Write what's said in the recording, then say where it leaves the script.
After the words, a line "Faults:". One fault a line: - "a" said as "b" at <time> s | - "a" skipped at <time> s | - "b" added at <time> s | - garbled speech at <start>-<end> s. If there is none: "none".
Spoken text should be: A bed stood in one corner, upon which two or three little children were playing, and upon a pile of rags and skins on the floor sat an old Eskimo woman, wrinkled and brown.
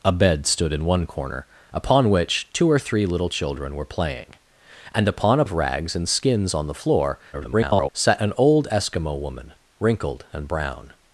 A bed stood in one corner, upon which two or three little children were playing, and upon a of rags and skins on the floor [garbled] sat an old Eskimo woman, wrinkled and brown.
Faults:
- "pile" skipped at 5.5 s
- garbled speech at 7.3-7.9 s